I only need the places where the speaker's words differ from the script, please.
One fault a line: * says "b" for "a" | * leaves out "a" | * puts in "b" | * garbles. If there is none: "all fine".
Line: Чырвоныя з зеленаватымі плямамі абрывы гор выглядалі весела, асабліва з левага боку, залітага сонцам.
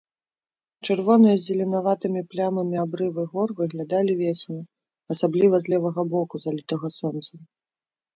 all fine